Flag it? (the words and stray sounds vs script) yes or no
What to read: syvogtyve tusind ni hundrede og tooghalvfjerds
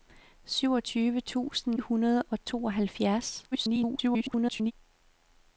yes